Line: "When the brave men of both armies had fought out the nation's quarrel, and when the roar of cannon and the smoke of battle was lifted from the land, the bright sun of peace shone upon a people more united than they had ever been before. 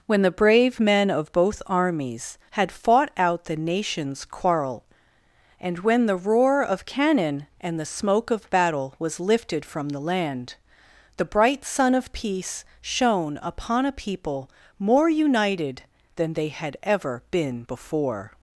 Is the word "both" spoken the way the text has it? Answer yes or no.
yes